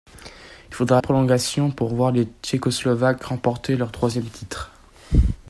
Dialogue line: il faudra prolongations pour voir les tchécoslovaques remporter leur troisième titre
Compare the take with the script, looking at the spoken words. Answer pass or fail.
pass